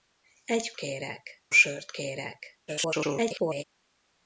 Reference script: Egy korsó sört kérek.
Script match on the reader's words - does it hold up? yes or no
no